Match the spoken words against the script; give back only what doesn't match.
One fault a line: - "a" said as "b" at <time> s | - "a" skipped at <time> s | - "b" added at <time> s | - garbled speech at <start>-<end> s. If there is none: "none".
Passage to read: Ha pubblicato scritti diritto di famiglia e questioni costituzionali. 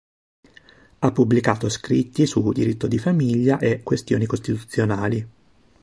- "su" added at 2.2 s